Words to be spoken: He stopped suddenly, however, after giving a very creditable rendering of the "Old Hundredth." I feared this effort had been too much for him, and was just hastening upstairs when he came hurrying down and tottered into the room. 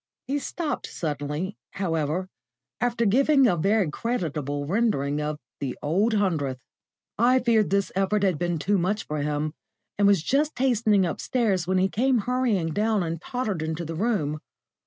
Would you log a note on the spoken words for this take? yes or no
no